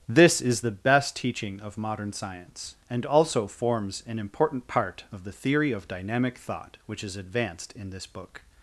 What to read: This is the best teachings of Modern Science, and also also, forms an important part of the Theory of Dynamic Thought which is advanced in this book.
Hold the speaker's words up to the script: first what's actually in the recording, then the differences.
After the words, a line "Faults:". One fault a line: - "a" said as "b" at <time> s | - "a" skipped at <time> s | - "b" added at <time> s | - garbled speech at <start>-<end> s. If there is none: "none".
This is the best teaching of Modern Science, and also, forms an important part of the Theory of Dynamic Thought which is advanced in this book.
Faults:
- "teachings" said as "teaching" at 1.1 s
- "also" skipped at 3.5 s